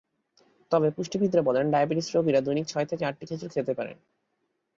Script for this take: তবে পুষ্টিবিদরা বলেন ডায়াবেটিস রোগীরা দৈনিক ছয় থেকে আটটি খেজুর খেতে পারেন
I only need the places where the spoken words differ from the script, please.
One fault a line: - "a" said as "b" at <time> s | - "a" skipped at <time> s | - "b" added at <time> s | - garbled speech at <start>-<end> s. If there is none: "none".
none